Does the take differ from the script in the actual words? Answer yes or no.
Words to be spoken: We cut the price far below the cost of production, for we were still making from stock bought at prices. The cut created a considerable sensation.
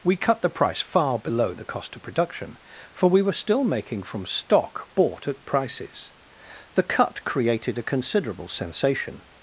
no